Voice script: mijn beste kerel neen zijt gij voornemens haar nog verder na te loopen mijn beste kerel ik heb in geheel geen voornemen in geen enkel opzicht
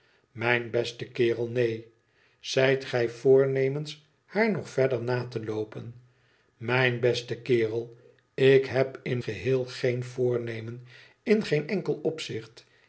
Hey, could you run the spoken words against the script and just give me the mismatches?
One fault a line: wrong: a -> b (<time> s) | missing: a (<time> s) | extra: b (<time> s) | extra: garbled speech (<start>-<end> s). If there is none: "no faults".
no faults